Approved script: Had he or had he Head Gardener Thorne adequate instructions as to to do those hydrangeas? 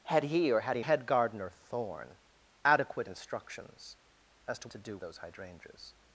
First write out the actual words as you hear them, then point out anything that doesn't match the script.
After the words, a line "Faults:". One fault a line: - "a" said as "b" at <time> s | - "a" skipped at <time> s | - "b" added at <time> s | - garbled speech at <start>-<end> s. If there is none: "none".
Had he or had he Head Gardener Thorne adequate instructions as to to do those hydrangeas?
Faults:
none